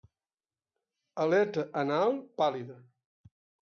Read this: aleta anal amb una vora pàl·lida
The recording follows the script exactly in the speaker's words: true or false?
false